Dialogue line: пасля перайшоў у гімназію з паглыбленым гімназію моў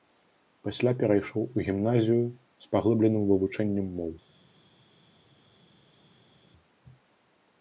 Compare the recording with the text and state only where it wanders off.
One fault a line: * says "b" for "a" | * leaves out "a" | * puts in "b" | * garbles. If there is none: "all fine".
* says "вывучэннем" for "гімназію"